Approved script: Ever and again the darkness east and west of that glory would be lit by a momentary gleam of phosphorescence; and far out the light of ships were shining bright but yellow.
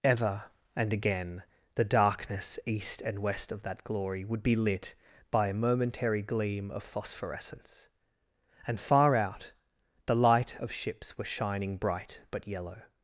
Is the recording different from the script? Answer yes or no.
no